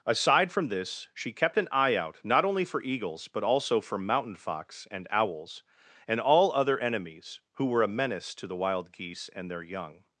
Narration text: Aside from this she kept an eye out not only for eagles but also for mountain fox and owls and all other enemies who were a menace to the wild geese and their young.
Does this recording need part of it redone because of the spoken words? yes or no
no